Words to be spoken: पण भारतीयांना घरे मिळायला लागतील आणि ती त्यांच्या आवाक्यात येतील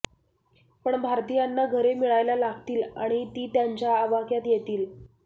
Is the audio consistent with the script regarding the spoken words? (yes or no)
yes